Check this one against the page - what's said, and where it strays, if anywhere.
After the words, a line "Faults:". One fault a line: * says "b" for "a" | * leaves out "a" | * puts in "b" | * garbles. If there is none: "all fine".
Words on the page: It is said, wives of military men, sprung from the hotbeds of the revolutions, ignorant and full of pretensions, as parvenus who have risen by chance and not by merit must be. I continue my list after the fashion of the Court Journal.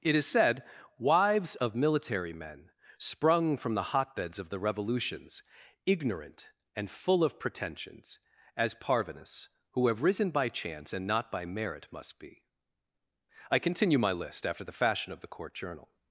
It is said, wives of military men, sprung from the hotbeds of the revolutions, ignorant and full of pretensions, as parvenus who have risen by chance and not by merit must be. I continue my list after the fashion of the Court Journal.
Faults:
all fine